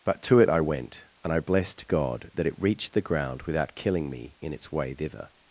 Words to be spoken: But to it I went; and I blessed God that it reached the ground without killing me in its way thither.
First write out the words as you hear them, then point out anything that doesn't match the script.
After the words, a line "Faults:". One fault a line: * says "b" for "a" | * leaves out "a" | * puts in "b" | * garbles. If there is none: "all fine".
But to it I went; and I blessed God that it reached the ground without killing me in its way thither.
Faults:
all fine